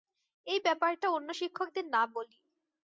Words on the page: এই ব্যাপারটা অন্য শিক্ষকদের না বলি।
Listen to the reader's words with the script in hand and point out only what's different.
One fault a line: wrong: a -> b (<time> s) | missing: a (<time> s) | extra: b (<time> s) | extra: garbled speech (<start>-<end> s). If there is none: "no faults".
no faults